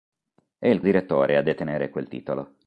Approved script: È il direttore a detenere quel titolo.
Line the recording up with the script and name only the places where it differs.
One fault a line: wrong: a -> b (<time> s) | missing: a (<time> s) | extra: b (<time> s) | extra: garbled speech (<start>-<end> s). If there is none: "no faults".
no faults